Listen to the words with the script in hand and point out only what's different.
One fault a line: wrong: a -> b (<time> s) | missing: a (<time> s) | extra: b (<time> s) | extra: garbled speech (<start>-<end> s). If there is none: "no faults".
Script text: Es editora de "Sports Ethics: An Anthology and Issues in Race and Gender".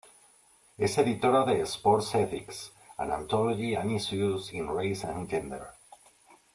no faults